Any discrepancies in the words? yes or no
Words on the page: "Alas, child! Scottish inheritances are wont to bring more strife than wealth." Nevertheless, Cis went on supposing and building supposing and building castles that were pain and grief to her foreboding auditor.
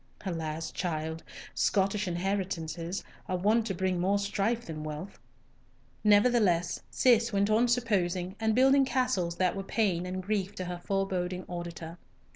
yes